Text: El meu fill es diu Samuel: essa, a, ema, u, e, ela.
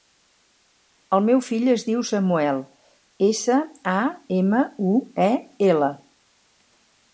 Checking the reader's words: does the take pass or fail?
pass